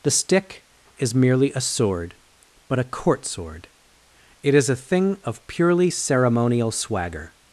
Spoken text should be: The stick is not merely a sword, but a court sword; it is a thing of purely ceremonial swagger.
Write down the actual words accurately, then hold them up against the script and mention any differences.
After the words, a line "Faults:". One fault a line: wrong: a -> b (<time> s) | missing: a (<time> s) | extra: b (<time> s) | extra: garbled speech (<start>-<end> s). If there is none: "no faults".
The stick is merely a sword, but a court sword; it is a thing of purely ceremonial swagger.
Faults:
missing: not (1.1 s)